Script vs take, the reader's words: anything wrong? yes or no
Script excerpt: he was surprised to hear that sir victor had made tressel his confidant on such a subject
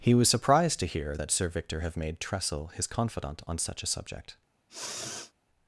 yes